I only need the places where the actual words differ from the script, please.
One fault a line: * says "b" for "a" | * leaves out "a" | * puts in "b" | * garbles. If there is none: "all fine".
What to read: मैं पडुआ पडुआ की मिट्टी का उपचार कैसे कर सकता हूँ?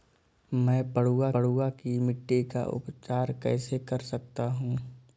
all fine